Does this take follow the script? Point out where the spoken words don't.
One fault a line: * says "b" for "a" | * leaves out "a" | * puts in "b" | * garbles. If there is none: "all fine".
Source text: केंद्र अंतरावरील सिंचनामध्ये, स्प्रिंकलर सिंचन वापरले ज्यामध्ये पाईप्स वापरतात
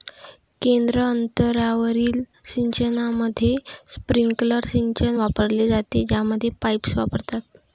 * puts in "जाते"